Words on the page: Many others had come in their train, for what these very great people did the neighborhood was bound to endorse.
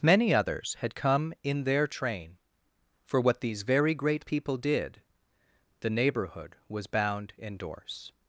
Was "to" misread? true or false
true